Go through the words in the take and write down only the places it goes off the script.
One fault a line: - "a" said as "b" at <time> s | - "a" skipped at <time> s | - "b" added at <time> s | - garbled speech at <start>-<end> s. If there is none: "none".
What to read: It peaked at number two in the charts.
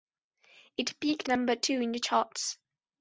- "at" skipped at 1.3 s